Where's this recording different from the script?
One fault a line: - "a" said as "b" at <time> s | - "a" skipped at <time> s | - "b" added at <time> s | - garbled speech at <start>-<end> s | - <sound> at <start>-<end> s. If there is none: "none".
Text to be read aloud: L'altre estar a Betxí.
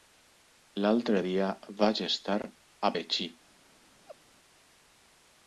- "dia vaig" added at 1.2 s
- laugh at 4.1-4.2 s